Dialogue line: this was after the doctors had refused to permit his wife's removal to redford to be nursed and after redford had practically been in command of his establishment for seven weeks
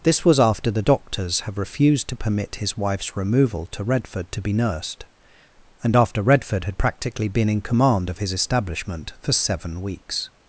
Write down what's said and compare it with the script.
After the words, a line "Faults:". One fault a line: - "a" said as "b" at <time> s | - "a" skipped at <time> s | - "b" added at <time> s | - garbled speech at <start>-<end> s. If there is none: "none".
this was after the doctors have refused to permit his wife's removal to redford to be nursed and after redford had practically been in command of his establishment for seven weeks
Faults:
- "had" said as "have" at 1.4 s